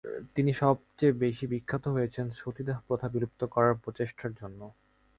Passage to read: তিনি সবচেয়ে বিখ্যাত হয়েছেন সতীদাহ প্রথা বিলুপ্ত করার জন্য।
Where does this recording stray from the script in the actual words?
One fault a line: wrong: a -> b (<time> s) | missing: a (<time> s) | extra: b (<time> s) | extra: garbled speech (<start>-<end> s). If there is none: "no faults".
extra: বেশি (1.2 s)
extra: প্রচেষ্টার (3.8 s)